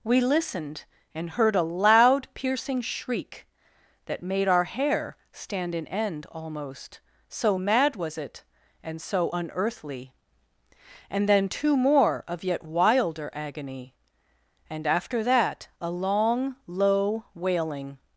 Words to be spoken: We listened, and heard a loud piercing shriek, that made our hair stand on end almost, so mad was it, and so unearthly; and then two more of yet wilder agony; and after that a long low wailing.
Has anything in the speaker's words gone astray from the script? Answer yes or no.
yes